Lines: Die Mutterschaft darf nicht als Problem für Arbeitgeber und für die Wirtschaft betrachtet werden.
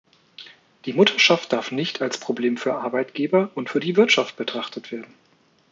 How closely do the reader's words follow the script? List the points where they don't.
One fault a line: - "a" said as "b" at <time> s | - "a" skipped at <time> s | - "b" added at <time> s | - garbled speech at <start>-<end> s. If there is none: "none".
none